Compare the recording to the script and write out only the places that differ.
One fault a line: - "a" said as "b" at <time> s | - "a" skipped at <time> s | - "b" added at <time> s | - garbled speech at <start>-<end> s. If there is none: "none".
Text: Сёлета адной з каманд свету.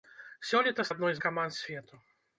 none